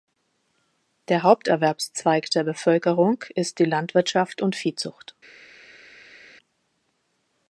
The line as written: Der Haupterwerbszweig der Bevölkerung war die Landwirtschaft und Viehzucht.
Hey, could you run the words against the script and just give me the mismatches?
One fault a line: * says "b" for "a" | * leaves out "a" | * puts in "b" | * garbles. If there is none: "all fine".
* says "ist" for "war"